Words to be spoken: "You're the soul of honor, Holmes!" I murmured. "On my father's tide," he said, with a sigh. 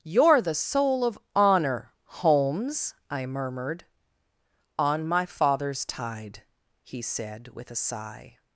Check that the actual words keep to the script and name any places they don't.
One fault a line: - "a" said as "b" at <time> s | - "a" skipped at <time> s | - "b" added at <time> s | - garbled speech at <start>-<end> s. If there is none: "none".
none